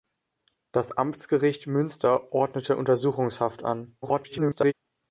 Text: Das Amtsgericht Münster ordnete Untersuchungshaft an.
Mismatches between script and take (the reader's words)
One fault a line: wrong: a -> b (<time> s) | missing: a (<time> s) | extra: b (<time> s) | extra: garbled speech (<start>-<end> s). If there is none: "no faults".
extra: garbled speech (4.0-4.7 s)